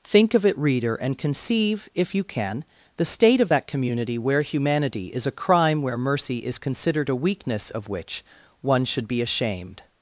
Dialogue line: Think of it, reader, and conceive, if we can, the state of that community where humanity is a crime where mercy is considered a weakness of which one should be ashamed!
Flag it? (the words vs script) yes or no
yes